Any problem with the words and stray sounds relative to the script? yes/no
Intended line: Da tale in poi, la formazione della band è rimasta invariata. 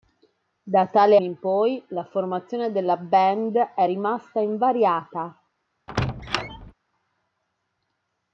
yes